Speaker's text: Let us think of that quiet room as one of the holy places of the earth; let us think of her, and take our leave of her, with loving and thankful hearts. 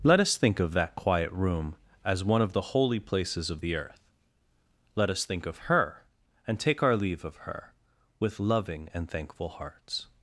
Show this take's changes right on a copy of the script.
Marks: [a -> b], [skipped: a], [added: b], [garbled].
Let us think of that quiet room as one of the holy places of the earth; let us think of her, and take our leave of her, with loving and thankful hearts.